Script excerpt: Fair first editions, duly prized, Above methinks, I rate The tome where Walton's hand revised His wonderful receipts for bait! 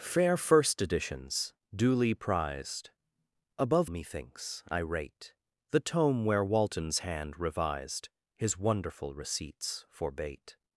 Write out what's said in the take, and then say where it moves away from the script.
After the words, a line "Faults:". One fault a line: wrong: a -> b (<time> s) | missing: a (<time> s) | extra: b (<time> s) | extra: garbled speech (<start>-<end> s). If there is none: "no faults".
Fair first editions, duly prized, Above methinks, I rate The tome where Walton's hand revised His wonderful receipts for bait!
Faults:
no faults